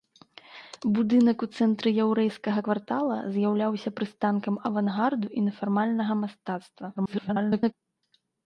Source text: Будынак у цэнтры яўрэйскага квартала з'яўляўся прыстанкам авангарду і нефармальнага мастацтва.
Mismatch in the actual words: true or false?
true